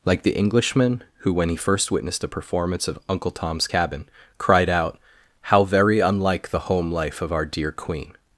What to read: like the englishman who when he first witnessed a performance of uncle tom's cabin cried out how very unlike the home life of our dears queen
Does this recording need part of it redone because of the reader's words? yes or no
yes